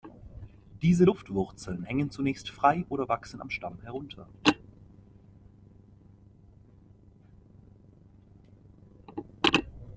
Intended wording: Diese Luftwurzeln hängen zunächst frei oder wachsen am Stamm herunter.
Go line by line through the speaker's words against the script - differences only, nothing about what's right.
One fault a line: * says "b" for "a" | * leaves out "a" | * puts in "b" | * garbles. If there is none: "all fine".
all fine